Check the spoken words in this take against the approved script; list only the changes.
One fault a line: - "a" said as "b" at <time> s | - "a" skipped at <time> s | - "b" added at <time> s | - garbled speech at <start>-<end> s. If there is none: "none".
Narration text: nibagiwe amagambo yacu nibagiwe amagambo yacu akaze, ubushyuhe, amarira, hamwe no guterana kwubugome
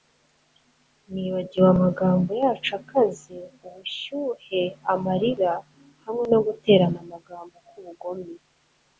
- "nibagiwe amagambo yacu" skipped at 2.7 s
- "amagambo" added at 7.0 s